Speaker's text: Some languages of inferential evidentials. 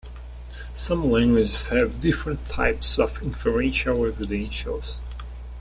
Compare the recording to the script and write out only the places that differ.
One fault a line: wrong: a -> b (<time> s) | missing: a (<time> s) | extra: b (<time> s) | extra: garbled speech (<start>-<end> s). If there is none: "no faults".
extra: have different types (1.7 s)